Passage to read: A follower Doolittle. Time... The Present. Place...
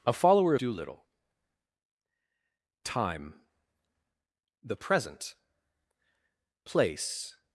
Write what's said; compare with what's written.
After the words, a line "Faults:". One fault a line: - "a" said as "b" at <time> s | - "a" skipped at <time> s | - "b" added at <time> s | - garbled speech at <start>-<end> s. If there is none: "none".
A follower Doolittle. Time... The Present. Place...
Faults:
none